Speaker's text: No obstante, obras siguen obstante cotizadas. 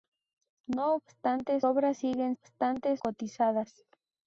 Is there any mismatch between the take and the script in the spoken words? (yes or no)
no